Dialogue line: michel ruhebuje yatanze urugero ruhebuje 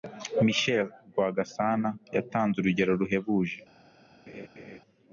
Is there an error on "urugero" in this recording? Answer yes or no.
no